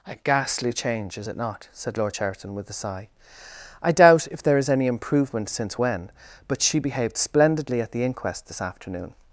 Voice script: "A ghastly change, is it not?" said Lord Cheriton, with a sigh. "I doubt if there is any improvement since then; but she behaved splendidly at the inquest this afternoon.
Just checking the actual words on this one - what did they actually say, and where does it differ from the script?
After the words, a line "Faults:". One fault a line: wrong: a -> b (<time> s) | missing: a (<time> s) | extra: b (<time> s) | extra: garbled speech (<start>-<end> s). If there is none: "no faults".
"A ghastly change, is it not?" said Lord Cheriton, with a sigh. "I doubt if there is any improvement since when; but she behaved splendidly at the inquest this afternoon.
Faults:
wrong: then -> when (5.8 s)